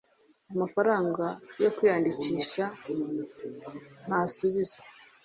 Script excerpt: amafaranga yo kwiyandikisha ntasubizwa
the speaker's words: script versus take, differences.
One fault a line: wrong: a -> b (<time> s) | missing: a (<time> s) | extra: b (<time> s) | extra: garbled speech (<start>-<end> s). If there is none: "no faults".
no faults